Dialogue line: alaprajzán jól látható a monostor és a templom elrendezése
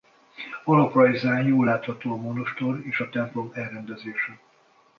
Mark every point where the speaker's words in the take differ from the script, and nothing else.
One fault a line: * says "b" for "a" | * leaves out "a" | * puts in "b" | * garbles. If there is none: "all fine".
all fine